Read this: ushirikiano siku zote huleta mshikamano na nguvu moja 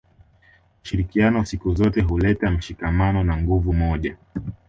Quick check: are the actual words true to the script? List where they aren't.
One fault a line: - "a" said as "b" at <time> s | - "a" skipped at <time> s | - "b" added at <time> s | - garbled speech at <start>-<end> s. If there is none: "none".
none